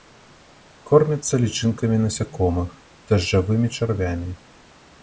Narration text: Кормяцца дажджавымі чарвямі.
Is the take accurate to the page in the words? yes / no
no